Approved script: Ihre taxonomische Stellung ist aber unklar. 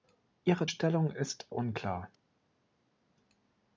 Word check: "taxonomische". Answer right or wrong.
wrong